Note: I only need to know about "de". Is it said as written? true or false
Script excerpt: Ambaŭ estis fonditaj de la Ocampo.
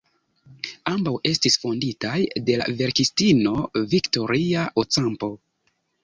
true